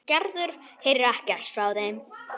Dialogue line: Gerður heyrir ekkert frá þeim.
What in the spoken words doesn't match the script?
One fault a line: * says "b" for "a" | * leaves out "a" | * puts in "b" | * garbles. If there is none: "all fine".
all fine